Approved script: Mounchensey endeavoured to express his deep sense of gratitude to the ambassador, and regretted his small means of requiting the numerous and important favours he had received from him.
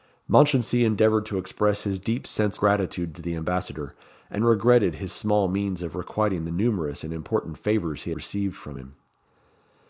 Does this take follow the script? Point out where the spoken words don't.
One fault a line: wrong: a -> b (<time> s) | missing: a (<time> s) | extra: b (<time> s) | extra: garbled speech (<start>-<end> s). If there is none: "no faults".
missing: of (2.6 s)
missing: had (8.1 s)